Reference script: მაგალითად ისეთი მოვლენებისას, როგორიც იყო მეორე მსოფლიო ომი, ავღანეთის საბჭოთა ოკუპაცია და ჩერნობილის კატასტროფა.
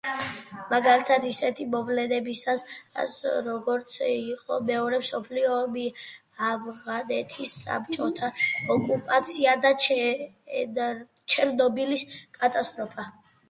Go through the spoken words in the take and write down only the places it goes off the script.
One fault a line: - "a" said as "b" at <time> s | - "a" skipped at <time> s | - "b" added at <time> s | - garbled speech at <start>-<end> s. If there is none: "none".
none